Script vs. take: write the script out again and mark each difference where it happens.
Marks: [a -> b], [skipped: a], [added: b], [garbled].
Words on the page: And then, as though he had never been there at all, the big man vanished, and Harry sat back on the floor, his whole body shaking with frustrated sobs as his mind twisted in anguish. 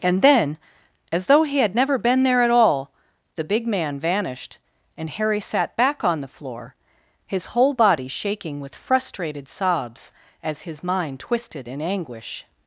And then, as though he had never been there at all, the big man vanished, and Harry sat back on the floor, his whole body shaking with frustrated sobs as his mind twisted in anguish.